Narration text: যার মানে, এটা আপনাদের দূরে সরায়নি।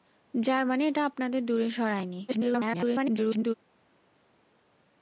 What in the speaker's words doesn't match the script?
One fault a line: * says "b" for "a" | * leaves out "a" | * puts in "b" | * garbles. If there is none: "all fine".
* garbles